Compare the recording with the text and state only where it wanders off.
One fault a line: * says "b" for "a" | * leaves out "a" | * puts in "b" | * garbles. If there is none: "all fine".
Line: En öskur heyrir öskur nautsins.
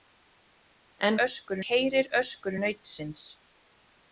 all fine